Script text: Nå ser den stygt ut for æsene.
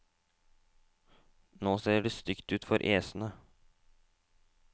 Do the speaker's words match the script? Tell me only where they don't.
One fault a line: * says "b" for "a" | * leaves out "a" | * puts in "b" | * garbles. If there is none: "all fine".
* says "det" for "den"